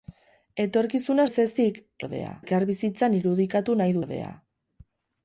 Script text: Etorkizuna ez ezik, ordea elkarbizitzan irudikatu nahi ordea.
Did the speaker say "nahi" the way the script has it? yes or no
yes